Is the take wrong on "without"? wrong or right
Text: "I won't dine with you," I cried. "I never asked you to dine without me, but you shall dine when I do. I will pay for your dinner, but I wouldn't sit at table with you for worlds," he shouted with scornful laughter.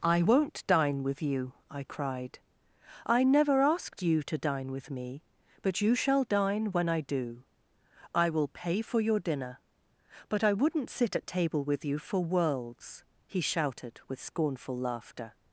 wrong